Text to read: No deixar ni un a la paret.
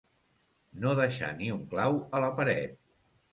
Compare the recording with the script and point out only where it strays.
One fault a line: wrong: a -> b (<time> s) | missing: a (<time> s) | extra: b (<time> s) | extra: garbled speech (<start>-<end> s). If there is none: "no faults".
extra: clau (1.7 s)